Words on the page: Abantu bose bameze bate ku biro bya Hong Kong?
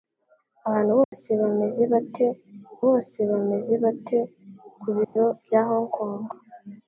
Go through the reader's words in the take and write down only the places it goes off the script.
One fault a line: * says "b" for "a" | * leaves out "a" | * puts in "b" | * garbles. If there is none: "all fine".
* puts in "bose bameze bate"